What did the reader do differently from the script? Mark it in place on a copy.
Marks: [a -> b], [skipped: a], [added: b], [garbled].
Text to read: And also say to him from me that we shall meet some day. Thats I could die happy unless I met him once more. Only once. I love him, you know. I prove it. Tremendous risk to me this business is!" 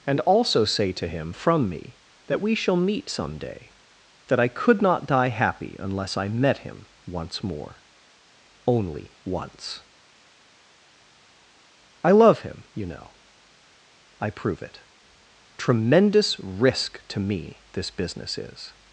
And also say to him from me that we shall meet some day. [Thats -> That] I could [added: not] die happy unless I met him once more. Only once. I love him, you know. I prove it. Tremendous risk to me this business is!"